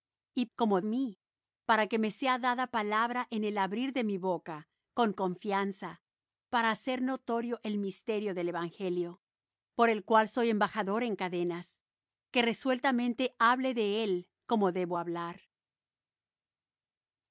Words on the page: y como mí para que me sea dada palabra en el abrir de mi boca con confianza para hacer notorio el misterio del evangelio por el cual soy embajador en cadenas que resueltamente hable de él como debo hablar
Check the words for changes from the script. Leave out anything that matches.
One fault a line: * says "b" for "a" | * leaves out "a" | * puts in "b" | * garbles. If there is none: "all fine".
all fine